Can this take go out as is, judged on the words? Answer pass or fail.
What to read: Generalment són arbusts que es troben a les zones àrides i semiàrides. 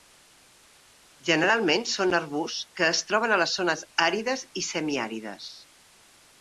pass